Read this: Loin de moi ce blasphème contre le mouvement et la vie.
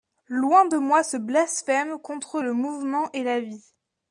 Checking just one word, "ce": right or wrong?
right